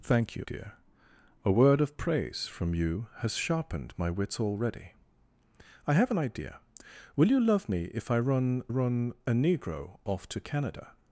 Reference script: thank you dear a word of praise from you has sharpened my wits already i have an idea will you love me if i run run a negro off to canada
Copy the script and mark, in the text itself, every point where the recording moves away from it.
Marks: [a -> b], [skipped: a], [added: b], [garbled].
thank you dear a word of praise from you has sharpened my wits already i have an idea will you love me if i run run a negro off to canada